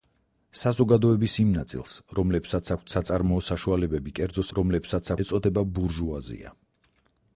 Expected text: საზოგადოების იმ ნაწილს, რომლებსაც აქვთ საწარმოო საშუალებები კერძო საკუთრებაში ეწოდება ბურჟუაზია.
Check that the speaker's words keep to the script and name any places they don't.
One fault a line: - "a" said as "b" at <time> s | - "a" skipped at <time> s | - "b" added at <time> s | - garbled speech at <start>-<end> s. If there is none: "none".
- "საკუთრებაში" said as "რომლებსაც" at 4.6 s